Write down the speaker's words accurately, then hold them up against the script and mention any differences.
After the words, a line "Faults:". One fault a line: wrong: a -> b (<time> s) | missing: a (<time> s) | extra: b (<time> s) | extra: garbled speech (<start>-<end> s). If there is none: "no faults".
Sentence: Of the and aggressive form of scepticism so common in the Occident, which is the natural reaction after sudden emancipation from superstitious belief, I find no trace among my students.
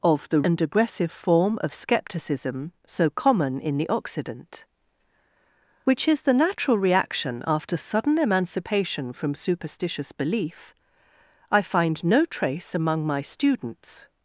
Of the and aggressive form of scepticism so common in the Occident, which is the natural reaction after sudden emancipation from superstitious belief, I find no trace among my students.
Faults:
no faults